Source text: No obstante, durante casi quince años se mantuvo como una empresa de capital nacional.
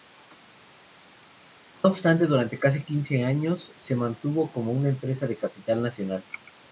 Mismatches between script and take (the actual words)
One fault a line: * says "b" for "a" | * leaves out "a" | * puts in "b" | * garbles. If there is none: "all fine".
all fine